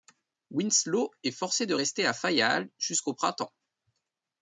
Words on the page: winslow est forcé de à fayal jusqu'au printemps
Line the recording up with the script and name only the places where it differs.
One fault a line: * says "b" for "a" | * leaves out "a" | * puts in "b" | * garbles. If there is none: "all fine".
* puts in "rester"